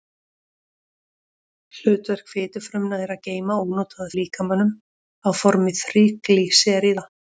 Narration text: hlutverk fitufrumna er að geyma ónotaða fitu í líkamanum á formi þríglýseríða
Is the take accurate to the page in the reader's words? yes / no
no